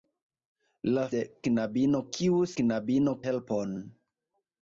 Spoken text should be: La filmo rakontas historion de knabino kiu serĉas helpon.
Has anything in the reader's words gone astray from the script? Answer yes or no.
yes